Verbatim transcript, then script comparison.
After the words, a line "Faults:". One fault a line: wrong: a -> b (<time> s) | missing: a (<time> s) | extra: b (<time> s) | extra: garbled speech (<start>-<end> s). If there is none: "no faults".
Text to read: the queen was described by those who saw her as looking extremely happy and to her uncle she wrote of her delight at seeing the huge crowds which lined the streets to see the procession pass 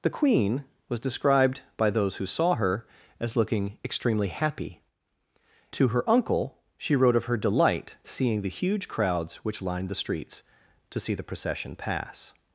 the queen was described by those who saw her as looking extremely happy to her uncle she wrote of her delight seeing the huge crowds which lined the streets to see the procession pass
Faults:
missing: and (4.8 s)
missing: at (8.0 s)